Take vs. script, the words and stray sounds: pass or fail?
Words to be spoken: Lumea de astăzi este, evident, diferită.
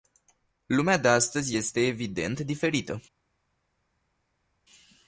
pass